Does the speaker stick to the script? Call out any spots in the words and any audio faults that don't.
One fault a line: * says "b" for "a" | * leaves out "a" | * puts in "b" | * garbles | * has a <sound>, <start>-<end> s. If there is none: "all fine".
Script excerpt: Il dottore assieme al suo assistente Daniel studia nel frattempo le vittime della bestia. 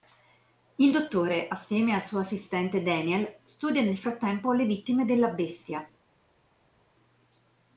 all fine